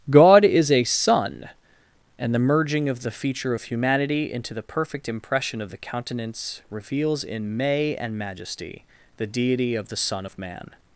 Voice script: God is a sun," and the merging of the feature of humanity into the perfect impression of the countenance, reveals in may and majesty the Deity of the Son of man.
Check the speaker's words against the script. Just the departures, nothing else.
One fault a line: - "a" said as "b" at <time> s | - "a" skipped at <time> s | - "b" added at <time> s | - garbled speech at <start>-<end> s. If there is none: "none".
none